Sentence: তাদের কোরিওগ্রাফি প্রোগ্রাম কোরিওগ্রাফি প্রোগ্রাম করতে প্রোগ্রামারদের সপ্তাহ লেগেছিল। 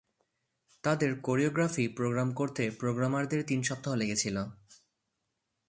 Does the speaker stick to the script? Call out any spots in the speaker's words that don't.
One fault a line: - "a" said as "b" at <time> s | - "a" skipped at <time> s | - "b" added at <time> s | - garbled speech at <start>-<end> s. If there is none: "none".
- "কোরিওগ্রাফি প্রোগ্রাম" skipped at 2.3 s
- "তিন" added at 3.5 s